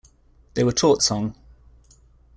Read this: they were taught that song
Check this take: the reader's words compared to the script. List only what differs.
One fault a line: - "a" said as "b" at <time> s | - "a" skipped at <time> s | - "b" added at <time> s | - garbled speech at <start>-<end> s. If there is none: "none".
- "that" skipped at 1.0 s